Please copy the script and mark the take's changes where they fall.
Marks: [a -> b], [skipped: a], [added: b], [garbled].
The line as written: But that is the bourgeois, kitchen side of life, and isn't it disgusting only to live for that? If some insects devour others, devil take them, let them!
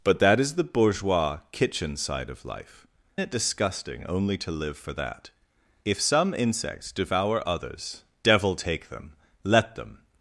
But that is the bourgeois, kitchen side of life, [skipped: and isn't] it disgusting only to live for that? If some insects devour others, devil take them, let them!